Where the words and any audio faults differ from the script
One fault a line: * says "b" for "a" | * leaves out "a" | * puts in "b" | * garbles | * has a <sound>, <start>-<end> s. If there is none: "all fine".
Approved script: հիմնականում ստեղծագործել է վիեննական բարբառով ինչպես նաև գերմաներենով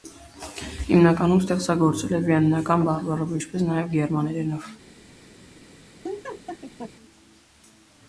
* has a laugh, 6.0-6.9 s